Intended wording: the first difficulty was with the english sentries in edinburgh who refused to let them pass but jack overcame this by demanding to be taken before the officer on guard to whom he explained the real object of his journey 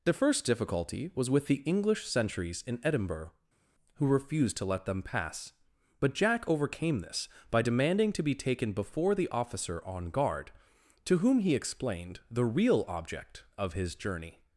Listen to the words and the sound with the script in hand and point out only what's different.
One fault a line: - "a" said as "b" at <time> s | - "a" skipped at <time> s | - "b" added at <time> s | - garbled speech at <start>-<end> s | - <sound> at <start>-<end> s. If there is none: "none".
none